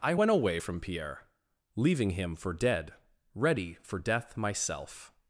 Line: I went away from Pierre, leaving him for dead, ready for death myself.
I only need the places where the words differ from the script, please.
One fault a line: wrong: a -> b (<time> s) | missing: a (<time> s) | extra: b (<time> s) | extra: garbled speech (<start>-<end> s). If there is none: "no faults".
no faults